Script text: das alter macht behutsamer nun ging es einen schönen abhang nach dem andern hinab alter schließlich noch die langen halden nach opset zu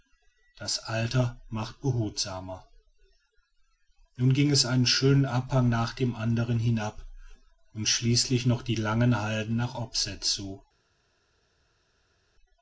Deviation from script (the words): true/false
true